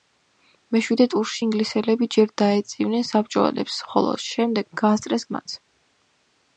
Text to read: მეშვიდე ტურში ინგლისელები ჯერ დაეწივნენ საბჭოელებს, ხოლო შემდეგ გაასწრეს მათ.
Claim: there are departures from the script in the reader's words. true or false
false